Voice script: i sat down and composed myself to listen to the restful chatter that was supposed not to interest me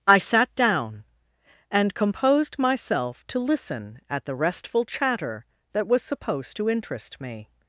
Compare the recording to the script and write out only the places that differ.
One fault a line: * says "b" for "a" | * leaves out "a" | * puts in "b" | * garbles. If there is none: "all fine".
* says "at" for "to"
* leaves out "not"